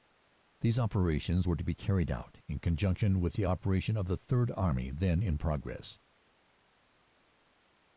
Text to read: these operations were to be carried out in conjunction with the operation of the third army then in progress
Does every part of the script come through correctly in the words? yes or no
yes